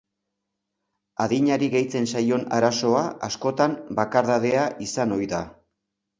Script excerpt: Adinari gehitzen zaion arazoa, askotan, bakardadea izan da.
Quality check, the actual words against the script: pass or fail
fail